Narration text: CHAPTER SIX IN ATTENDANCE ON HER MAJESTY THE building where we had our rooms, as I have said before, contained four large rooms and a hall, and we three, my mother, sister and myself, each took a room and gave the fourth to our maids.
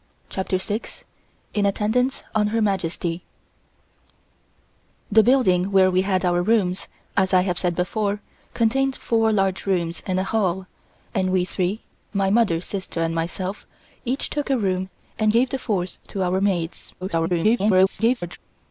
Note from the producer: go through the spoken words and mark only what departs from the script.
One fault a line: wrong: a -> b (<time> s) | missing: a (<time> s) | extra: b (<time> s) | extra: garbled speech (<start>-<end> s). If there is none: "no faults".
extra: garbled speech (17.0-18.4 s)